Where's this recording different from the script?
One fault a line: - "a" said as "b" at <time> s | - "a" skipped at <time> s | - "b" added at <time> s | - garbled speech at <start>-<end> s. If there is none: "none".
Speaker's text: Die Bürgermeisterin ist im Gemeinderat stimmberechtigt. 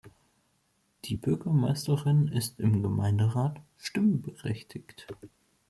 none